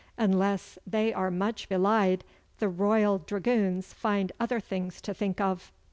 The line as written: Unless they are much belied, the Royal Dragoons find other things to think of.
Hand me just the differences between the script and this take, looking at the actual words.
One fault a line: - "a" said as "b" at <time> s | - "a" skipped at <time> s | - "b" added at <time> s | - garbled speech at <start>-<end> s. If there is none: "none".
none